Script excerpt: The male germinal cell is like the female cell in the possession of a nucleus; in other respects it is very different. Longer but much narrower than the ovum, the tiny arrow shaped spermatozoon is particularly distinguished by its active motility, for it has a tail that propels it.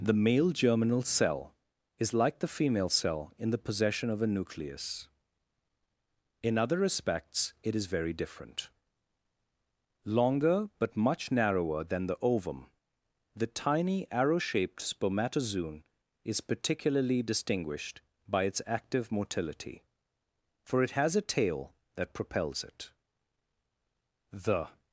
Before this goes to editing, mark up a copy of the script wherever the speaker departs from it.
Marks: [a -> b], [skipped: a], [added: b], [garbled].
The male germinal cell is like the female cell in the possession of a nucleus; in other respects it is very different. Longer but much narrower than the ovum, the tiny arrow shaped spermatozoon is particularly distinguished by its active motility, for it has a tail that propels it. [added: The]